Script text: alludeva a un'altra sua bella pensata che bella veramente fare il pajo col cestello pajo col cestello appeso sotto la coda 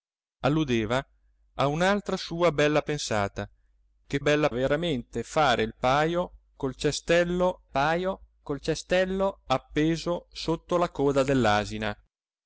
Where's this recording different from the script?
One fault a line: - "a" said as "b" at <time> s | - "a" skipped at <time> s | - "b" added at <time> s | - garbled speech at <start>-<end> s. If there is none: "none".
none